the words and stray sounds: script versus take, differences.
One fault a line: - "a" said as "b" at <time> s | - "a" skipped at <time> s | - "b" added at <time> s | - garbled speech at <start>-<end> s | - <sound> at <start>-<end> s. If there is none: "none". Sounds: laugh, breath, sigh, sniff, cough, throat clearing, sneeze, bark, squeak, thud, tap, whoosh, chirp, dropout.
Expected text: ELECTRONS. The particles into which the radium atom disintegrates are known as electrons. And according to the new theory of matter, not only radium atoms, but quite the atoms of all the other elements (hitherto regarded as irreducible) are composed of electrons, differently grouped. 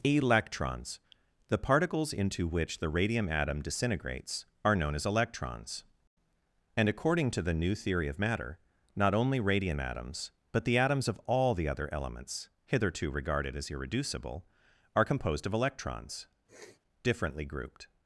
- "quite" skipped at 10.7 s
- sniff at 16.5-16.8 s